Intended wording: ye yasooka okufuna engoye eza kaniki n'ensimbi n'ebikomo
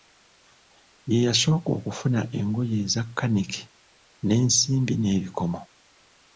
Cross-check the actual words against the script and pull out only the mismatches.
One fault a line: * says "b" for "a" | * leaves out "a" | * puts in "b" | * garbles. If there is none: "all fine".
all fine